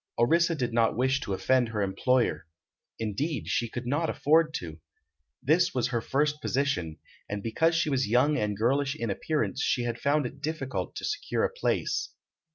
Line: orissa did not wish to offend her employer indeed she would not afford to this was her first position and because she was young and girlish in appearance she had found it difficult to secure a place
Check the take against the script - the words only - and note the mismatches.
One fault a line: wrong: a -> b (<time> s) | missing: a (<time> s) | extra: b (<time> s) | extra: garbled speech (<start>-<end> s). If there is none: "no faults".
wrong: would -> could (3.7 s)